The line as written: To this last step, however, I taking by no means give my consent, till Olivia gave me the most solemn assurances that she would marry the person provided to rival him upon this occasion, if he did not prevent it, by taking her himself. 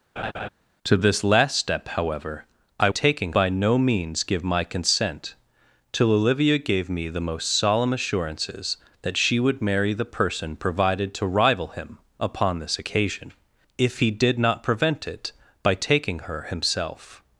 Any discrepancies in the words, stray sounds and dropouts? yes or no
yes